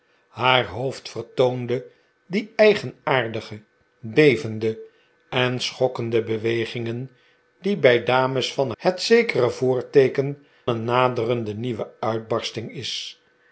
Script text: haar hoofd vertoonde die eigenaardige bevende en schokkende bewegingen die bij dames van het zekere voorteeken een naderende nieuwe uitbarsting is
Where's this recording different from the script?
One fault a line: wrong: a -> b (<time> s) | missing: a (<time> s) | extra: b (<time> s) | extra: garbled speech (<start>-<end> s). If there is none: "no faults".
no faults